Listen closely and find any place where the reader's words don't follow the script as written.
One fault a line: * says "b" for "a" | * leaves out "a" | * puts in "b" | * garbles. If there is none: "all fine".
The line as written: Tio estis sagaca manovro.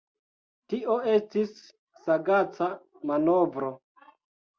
all fine